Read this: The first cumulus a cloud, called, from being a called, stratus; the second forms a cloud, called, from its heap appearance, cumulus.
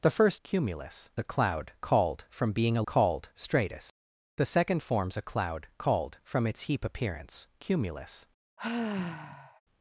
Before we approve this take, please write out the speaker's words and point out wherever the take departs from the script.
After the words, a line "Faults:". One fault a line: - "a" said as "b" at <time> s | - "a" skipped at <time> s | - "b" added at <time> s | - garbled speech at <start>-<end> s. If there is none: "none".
The first cumulus a cloud, called, from being a called, stratus; the second forms a cloud, called, from its heap appearance, cumulus.
Faults:
none